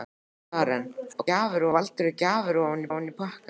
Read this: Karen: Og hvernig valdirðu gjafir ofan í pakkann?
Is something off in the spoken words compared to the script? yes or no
yes